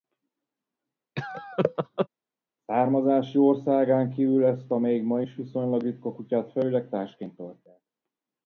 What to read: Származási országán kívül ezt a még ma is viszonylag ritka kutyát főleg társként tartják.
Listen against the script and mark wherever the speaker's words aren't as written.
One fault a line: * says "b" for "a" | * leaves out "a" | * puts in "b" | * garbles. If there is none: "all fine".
all fine